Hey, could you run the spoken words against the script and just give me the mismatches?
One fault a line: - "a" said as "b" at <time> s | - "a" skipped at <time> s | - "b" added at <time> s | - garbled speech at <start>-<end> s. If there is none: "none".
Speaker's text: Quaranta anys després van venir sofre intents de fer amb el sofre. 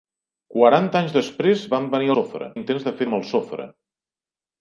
none